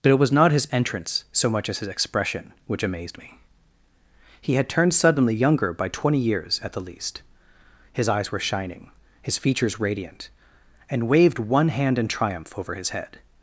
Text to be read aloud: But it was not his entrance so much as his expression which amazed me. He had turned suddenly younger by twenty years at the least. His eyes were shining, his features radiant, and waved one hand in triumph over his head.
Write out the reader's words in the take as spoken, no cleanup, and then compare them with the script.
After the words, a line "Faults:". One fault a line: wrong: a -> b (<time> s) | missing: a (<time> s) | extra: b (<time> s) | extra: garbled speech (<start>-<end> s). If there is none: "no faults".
But it was not his entrance so much as his expression which amazed me. He had turned suddenly younger by twenty years at the least. His eyes were shining, his features radiant, and waved one hand in triumph over his head.
Faults:
no faults